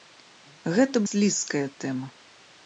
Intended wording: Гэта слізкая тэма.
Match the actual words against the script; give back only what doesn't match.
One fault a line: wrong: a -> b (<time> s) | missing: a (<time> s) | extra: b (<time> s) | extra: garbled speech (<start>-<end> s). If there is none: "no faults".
no faults